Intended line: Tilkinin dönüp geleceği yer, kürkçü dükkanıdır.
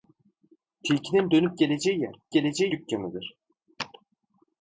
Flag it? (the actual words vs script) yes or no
yes